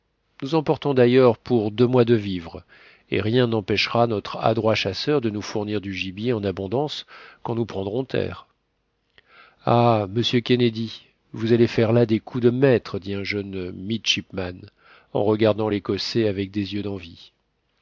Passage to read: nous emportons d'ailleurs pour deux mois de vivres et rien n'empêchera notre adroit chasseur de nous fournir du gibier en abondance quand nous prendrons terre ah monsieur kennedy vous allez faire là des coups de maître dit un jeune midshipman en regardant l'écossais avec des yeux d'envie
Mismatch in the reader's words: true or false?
false